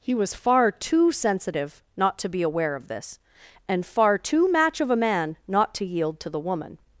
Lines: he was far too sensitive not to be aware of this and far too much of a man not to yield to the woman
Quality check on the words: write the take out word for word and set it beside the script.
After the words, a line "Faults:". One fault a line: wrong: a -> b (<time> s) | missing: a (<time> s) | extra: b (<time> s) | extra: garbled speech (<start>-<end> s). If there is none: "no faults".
he was far too sensitive not to be aware of this and far too match of a man not to yield to the woman
Faults:
wrong: much -> match (4.5 s)